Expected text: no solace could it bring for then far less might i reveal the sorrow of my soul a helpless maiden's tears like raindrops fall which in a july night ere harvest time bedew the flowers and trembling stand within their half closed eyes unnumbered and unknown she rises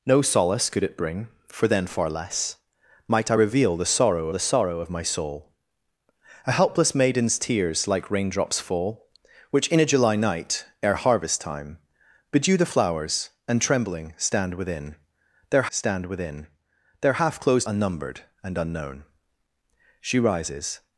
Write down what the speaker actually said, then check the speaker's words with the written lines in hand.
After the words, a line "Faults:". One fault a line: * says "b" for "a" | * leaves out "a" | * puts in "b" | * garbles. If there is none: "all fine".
no solace could it bring for then far less might i reveal the sorrow the sorrow of my soul a helpless maiden's tears like raindrops fall which in a july night ere harvest time bedew the flowers and trembling stand within their stand within their half closed unnumbered and unknown she rises
Faults:
* puts in "the sorrow"
* puts in "stand within their"
* leaves out "eyes"